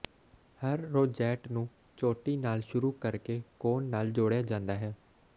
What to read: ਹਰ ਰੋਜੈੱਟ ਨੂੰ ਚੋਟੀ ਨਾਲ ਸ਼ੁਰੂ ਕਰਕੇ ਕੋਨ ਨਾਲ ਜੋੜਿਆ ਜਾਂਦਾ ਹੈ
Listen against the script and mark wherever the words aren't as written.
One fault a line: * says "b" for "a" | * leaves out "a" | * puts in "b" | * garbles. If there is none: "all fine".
all fine